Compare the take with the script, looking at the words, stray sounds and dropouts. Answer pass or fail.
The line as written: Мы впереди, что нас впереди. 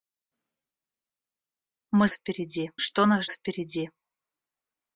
pass